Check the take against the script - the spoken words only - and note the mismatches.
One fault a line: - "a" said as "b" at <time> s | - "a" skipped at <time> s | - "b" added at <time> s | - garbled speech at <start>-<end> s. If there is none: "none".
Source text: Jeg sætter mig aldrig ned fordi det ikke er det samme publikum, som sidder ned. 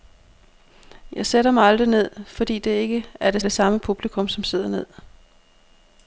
- "det" added at 3.4 s